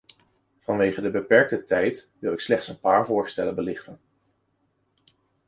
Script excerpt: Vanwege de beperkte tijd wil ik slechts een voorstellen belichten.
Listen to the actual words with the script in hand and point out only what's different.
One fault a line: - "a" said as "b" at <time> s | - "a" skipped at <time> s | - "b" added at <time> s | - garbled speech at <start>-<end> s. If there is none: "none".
- "paar" added at 2.8 s